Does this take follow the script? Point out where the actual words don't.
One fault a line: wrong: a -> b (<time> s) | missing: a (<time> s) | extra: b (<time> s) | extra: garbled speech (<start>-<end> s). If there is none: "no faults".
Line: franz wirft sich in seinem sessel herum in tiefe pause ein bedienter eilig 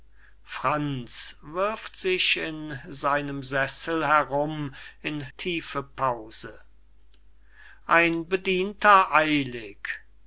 no faults